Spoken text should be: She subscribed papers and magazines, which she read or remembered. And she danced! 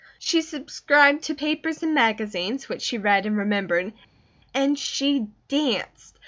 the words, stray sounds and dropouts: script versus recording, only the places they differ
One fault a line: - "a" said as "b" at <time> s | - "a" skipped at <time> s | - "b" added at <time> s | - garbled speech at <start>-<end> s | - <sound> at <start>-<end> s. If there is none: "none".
- "to" added at 1.2 s
- "or" said as "and" at 3.3 s